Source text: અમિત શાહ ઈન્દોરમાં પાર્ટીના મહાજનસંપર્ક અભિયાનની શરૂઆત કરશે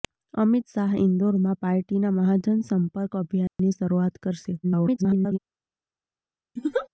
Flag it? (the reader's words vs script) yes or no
yes